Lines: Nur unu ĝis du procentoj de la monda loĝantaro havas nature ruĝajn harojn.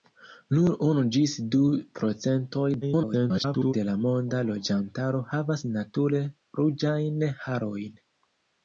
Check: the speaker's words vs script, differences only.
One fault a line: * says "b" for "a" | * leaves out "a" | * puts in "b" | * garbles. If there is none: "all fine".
* garbles